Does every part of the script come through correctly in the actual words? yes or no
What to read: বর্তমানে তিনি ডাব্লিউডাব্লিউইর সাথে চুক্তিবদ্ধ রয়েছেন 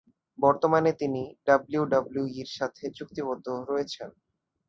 yes